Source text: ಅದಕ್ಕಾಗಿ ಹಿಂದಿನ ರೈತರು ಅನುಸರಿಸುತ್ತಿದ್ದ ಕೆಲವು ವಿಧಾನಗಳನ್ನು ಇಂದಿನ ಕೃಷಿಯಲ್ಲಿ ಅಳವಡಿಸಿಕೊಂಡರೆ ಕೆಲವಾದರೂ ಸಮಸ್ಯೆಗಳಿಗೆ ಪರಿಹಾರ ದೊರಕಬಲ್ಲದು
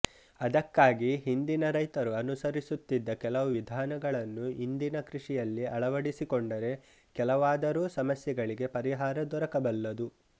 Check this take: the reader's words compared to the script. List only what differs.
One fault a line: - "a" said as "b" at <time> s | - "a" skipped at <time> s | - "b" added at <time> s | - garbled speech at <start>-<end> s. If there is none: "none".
none